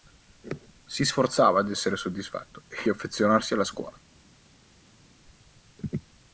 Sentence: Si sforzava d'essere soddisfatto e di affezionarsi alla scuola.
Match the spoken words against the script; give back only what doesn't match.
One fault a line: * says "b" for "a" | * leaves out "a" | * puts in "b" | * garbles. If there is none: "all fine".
* leaves out "di"